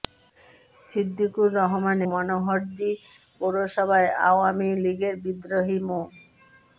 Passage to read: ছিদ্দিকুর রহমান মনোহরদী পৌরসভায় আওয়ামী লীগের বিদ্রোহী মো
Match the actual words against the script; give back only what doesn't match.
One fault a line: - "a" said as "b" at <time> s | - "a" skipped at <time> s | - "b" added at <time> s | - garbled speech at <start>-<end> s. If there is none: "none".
none